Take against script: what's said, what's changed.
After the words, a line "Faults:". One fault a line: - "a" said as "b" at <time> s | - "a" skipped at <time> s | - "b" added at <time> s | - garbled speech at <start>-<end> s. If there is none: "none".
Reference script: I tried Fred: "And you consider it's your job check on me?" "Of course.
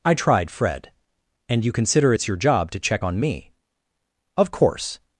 I tried Fred: "And you consider it's your job to check on me?" "Of course.
Faults:
- "to" added at 2.7 s